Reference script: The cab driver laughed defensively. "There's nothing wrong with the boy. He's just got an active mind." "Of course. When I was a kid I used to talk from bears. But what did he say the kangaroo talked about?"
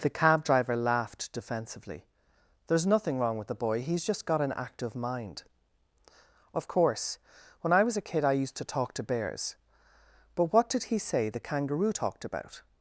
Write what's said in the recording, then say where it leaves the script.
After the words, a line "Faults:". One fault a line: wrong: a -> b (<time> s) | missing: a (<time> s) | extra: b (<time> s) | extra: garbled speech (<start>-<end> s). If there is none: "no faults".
The cab driver laughed defensively. "There's nothing wrong with the boy. He's just got an active mind." "Of course. When I was a kid I used to talk to bears. But what did he say the kangaroo talked about?"
Faults:
wrong: from -> to (8.9 s)